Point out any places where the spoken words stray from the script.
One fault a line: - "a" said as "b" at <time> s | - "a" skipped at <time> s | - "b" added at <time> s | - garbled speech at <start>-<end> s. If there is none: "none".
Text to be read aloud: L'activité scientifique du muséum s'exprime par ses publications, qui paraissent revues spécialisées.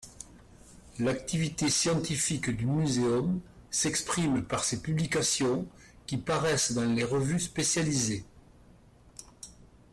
- "dans les" added at 6.7 s